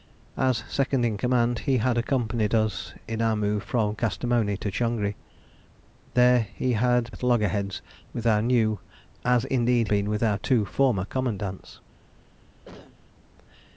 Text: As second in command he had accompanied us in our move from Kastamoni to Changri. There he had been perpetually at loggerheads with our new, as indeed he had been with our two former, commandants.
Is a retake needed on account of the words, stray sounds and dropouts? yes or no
yes